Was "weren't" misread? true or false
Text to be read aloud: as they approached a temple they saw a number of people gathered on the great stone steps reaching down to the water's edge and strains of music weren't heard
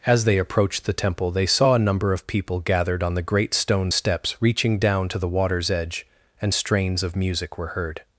true